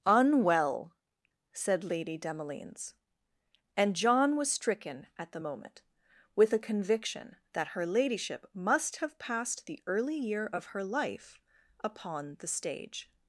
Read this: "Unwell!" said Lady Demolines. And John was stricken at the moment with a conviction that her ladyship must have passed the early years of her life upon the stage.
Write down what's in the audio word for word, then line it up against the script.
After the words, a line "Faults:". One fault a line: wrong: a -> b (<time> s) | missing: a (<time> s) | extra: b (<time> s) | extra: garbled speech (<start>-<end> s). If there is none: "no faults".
"Unwell!" said Lady Demolines. And John was stricken at the moment with a conviction that her ladyship must have passed the early year of her life upon the stage.
Faults:
wrong: years -> year (10.2 s)